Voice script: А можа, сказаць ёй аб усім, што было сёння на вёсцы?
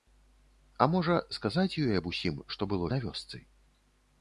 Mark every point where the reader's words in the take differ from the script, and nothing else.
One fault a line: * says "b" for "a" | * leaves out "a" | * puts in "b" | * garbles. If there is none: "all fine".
* leaves out "сёння"